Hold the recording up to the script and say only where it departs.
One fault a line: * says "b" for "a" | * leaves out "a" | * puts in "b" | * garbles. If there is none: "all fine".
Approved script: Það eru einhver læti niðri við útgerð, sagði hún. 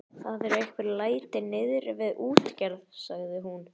all fine